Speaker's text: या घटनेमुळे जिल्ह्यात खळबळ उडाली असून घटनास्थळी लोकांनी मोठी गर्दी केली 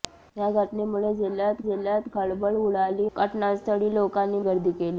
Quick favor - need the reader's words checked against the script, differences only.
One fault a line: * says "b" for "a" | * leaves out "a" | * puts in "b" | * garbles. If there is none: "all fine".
* puts in "जिल्ह्यात"
* leaves out "असून"
* leaves out "मोठी"